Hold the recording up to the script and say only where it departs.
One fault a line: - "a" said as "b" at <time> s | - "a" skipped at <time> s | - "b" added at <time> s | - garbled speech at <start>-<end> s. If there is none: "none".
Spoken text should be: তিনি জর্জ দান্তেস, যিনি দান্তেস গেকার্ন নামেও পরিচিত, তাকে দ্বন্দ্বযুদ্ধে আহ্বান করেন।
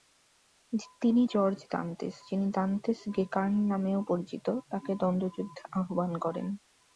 none